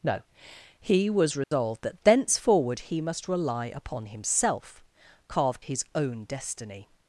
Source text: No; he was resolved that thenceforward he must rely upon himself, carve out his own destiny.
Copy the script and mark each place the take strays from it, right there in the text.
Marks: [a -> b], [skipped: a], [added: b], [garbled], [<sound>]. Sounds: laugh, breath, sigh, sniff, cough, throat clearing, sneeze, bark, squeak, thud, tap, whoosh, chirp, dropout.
No; he was resolved [dropout] that thenceforward he must rely upon himself, carve [skipped: out] his own destiny.